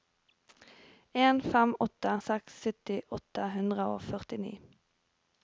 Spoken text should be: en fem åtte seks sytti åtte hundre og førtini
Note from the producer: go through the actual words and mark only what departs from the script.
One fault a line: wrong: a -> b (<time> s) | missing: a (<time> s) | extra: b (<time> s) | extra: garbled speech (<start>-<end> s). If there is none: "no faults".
no faults